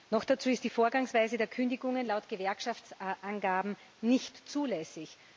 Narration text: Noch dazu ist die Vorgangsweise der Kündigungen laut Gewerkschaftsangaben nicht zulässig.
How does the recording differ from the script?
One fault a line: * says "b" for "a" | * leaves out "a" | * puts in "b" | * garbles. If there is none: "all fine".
all fine